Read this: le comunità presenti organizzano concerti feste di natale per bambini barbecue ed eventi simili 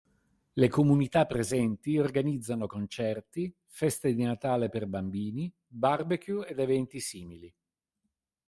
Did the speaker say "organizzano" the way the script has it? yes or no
yes